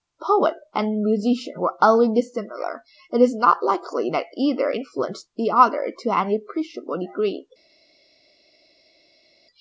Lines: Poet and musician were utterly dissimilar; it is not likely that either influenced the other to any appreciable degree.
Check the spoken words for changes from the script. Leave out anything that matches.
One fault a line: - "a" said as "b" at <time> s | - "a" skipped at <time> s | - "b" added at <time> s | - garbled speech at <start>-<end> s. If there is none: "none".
none